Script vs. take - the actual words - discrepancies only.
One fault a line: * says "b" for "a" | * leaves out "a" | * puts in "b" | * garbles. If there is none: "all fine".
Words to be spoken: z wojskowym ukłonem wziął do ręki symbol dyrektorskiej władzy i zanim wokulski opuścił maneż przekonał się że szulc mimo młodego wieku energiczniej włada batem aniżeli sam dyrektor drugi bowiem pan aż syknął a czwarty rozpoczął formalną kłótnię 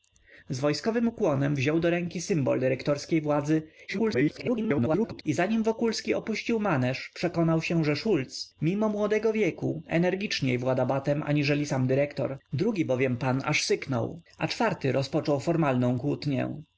* garbles